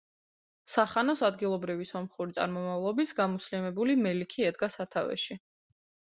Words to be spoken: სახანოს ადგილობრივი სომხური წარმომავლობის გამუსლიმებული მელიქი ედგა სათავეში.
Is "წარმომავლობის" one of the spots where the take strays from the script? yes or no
no